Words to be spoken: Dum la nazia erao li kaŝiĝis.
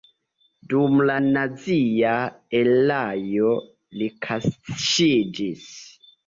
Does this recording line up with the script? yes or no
yes